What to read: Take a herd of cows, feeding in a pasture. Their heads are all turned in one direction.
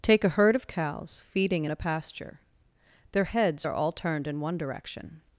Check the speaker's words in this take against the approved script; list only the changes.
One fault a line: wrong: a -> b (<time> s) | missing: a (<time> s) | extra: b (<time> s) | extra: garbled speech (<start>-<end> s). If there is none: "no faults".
no faults